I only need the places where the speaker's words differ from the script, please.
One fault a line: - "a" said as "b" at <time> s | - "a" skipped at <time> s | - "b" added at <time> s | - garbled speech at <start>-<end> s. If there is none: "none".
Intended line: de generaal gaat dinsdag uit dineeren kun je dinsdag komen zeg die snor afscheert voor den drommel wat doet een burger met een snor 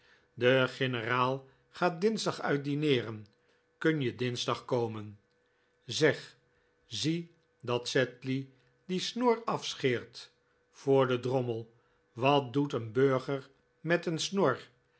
- "zie dat sedley" added at 6.8 s